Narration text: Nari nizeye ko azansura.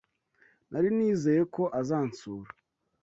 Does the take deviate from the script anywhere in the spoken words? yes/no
no